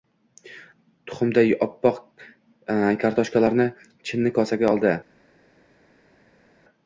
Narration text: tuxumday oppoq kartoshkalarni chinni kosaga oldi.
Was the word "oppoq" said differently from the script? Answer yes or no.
no